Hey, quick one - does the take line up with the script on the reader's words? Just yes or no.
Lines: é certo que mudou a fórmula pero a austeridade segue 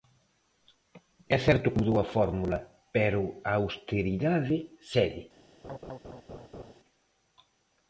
yes